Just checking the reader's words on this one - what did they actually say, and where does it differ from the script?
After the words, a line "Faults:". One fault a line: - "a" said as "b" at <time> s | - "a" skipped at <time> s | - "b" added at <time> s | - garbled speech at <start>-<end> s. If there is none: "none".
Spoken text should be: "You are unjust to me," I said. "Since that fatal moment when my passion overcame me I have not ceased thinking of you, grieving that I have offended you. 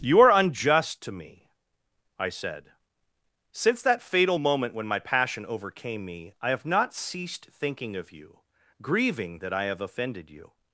"You are unjust to me," I said. "Since that fatal moment when my passion overcame me I have not ceased thinking of you, grieving that I have offended you.
Faults:
none